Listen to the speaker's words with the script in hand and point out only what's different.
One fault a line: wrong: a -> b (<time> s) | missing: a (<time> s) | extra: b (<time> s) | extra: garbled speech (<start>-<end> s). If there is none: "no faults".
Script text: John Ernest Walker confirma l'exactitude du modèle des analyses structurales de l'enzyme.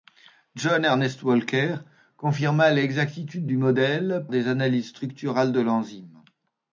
no faults